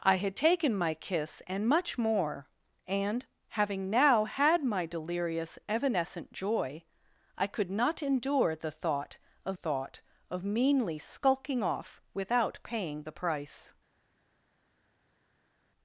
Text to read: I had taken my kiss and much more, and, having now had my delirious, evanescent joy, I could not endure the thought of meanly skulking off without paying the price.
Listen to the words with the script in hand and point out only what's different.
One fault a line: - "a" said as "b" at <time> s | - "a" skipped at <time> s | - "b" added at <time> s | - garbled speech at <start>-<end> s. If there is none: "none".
- "thought of" added at 9.5 s